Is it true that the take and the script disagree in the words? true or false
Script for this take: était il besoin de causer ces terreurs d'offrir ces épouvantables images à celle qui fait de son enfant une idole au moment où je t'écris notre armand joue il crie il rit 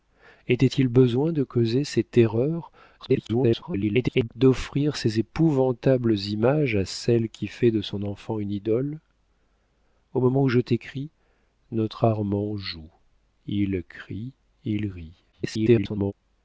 true